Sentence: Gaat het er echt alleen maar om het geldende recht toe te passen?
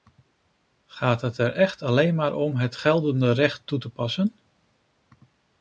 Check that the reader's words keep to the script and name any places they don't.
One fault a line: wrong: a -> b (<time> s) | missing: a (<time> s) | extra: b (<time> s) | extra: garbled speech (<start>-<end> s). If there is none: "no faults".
no faults